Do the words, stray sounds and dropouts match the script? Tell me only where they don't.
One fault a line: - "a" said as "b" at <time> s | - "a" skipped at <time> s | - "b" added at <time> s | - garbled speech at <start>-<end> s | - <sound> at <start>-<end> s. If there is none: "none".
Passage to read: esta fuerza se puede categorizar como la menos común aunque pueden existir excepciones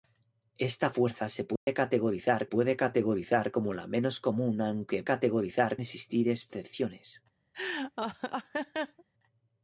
- dropout at 1.6-1.7 s
- "puede categorizar" added at 2.4 s
- "pueden" said as "categorizar" at 5.0 s
- laugh at 7.5-9.0 s